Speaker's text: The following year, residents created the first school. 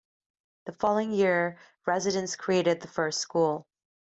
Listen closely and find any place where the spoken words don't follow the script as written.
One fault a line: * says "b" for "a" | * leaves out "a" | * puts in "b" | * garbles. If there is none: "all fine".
all fine